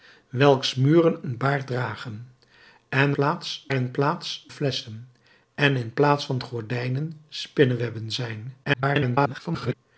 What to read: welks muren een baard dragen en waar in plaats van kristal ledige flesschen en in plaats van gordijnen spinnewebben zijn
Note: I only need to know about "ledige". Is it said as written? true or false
false